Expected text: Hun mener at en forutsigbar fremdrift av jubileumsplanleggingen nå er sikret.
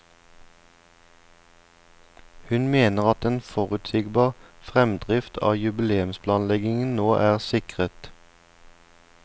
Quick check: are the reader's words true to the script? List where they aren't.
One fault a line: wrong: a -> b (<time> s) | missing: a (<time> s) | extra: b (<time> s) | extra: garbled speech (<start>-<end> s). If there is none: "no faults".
no faults